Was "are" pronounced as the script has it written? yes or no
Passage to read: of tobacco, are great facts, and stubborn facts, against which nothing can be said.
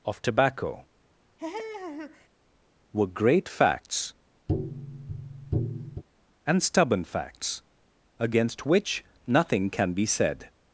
no